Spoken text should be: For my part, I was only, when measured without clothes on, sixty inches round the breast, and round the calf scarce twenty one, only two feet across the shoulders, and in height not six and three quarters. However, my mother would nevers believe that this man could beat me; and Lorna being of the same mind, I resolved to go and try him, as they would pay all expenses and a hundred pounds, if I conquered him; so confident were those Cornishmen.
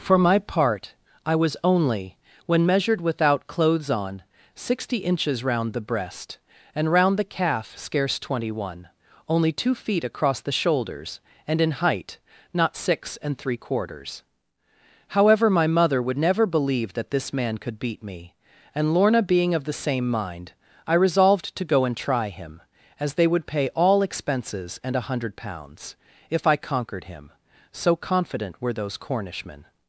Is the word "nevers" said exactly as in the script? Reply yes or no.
no